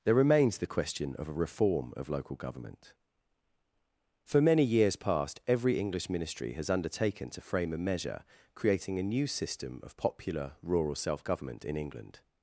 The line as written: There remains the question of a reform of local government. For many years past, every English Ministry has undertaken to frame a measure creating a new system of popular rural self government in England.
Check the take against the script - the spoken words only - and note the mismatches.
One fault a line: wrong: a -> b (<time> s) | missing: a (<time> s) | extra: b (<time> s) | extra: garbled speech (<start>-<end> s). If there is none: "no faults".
no faults